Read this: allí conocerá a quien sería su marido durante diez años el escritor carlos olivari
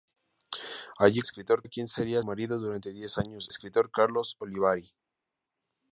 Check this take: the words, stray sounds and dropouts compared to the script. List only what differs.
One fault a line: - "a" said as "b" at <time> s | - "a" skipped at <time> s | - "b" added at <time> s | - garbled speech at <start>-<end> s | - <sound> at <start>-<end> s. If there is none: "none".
- "conocerá" said as "escritor" at 1.2 s
- "su" skipped at 2.2 s
- "el" skipped at 3.5 s